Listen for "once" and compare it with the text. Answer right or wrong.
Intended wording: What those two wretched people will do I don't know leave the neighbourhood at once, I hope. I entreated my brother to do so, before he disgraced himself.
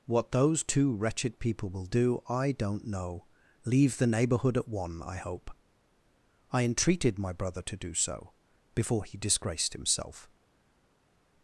wrong